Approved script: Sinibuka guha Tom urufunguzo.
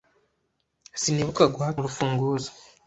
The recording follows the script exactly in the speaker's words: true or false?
false